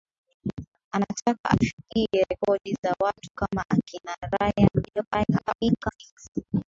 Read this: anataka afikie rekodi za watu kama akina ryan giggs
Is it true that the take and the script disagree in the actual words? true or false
true